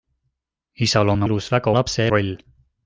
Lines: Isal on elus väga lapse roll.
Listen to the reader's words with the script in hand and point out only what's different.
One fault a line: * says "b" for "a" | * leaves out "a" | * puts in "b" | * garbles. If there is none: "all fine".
all fine